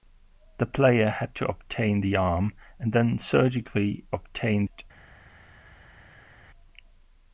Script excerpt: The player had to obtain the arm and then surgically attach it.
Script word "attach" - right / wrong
wrong